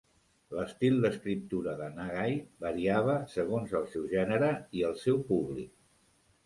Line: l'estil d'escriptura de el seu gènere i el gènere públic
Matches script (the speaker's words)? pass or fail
fail